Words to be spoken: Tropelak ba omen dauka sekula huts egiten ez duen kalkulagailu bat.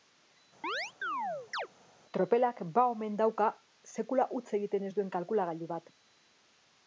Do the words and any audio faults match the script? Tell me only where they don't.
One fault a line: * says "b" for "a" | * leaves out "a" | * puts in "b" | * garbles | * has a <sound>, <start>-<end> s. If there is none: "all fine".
* has a chirp, 0.6-1.7 s